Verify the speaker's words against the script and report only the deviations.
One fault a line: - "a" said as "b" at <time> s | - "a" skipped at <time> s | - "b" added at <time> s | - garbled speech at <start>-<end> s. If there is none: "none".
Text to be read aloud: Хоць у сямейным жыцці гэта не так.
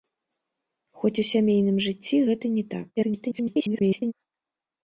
- garbled speech at 3.0-4.1 s